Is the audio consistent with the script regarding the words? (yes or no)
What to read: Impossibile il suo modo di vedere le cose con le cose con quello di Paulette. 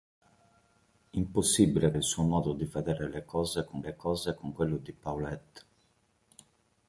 yes